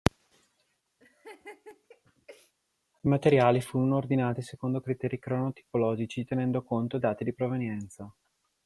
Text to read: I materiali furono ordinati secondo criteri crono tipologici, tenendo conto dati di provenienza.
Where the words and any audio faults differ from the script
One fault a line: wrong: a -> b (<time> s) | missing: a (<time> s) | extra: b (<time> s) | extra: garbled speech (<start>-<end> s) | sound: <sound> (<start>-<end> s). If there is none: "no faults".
sound: laugh (1.0-2.5 s)